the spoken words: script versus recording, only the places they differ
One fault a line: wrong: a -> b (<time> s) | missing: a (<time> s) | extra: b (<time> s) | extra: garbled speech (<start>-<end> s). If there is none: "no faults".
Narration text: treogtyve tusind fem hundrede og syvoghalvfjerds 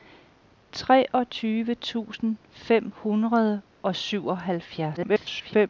extra: garbled speech (5.0-5.7 s)